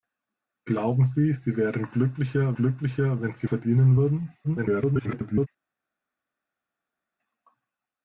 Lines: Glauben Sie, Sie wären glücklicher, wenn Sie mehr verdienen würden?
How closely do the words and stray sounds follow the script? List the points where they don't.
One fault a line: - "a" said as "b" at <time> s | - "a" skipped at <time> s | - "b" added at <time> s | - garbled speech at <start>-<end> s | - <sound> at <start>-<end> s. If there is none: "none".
- "glücklicher" added at 2.5 s
- "mehr" skipped at 3.5 s
- garbled speech at 4.4-5.5 s